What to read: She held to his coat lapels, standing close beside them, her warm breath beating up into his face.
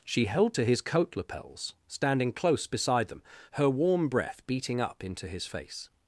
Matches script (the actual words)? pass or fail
pass